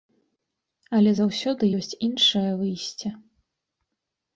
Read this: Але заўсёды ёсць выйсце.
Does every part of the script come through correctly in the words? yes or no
no